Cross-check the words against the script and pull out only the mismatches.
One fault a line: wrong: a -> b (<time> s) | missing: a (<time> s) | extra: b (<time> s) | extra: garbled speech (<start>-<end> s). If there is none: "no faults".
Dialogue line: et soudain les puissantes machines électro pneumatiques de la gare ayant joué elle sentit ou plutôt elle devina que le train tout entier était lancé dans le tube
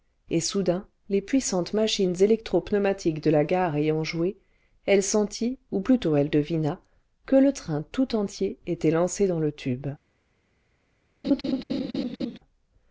no faults